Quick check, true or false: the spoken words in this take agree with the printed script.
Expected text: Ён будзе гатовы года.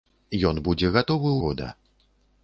true